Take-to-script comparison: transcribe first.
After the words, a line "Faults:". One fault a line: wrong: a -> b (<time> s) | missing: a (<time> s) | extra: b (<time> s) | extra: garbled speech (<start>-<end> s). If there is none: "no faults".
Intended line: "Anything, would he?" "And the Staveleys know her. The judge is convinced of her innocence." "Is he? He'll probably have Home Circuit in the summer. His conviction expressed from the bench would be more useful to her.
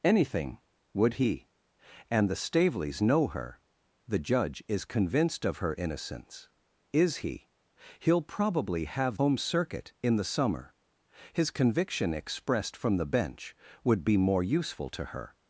"Anything, would he?" "And the Staveleys know her. The judge is convinced of her innocence." "Is he? He'll probably have Home Circuit in the summer. His conviction expressed from the bench would be more useful to her.
Faults:
no faults